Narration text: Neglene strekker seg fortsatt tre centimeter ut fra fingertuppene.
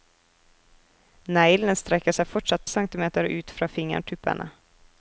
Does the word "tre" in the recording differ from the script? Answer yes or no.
yes